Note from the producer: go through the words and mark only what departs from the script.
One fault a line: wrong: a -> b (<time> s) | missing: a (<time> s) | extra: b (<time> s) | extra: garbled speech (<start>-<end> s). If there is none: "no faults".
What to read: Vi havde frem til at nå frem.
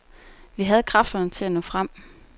wrong: frem -> kræfterne (0.8 s)